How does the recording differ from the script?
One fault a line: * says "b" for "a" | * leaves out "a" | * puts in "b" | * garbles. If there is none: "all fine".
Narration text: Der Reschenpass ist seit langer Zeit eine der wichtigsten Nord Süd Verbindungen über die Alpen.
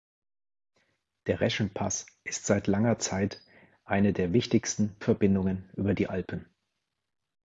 * leaves out "Nord Süd"